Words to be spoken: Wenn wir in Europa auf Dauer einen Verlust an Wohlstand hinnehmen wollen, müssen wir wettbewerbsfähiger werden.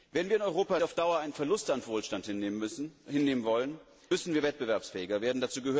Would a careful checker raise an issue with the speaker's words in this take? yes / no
no